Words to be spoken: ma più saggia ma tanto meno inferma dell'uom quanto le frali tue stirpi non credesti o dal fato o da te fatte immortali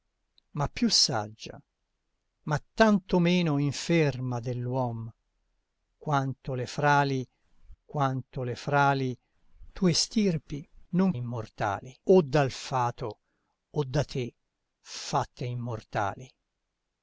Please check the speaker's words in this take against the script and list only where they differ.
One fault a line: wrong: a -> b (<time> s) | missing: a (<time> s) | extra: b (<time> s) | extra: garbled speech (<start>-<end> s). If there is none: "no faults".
extra: quanto le frali (7.8 s)
wrong: credesti -> immortali (11.1 s)